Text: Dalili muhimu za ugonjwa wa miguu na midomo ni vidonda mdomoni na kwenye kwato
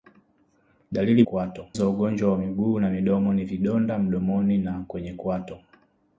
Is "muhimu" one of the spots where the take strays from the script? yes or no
yes